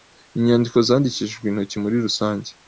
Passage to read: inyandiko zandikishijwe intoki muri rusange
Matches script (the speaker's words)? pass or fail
pass